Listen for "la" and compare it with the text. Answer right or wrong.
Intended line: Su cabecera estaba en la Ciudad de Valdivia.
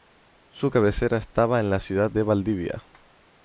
right